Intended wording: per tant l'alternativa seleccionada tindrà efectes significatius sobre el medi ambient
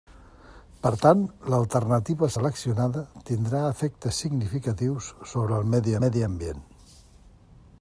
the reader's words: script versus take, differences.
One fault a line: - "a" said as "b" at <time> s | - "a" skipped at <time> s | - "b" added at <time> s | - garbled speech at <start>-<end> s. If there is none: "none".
- "medi" added at 6.0 s